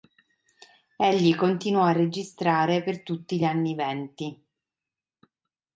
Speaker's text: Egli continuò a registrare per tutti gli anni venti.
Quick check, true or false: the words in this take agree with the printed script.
true